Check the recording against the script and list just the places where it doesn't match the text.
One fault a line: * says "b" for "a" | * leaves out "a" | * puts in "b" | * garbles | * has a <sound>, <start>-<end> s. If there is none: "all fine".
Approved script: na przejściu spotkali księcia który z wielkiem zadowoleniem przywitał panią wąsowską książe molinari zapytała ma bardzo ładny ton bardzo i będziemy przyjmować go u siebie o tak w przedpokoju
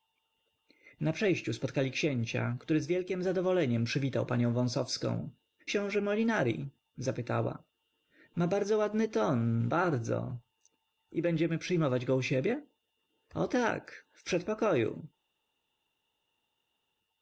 all fine